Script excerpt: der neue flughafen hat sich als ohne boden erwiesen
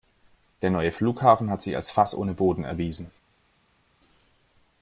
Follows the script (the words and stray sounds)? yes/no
no